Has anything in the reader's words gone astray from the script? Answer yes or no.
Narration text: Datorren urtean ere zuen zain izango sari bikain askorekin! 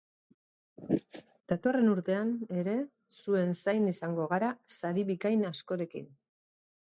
yes